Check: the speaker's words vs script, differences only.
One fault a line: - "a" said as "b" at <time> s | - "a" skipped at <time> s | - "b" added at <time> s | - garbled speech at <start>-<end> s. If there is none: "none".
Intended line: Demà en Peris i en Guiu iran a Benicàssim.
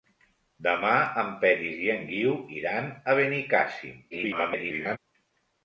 - garbled speech at 4.1-5.0 s